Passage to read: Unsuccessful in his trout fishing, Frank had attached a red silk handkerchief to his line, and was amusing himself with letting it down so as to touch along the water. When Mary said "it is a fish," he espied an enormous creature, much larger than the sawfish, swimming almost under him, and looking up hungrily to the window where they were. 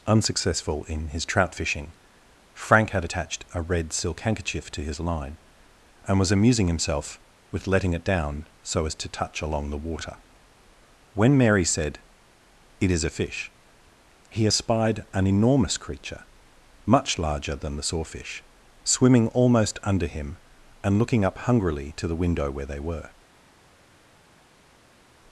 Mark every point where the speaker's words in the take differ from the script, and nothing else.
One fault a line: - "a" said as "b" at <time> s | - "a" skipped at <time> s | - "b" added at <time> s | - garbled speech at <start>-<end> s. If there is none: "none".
none